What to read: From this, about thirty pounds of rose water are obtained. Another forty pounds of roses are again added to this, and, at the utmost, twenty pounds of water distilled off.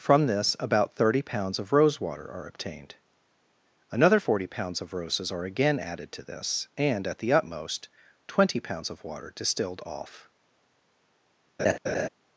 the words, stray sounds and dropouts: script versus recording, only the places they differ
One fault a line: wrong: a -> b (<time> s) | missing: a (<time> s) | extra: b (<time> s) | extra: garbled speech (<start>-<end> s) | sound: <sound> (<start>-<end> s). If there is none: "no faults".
sound: laugh (11.6-12.1 s)